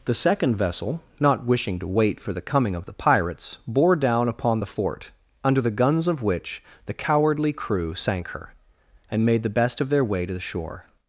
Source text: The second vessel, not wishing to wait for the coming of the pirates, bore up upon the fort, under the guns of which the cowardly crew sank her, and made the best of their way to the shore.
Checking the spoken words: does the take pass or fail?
fail